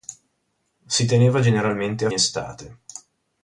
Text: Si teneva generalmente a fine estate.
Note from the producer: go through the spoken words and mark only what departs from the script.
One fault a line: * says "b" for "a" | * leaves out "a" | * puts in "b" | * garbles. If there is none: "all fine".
* leaves out "fine"